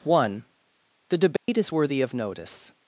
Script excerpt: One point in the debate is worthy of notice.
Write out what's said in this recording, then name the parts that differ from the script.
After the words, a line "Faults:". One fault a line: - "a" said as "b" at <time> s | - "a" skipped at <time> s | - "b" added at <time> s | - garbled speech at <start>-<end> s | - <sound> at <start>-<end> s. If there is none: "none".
One the debate is worthy of notice.
Faults:
- "point in" skipped at 0.5 s
- dropout at 1.4-1.5 s